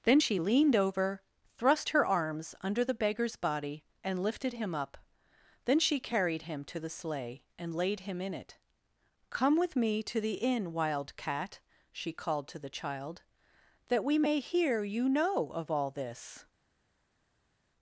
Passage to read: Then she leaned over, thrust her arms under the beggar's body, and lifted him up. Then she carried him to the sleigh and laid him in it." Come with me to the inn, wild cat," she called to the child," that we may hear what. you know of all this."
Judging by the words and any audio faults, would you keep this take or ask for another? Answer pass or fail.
fail